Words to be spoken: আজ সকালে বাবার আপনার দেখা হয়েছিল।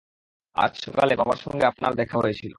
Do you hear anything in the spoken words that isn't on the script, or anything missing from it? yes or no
yes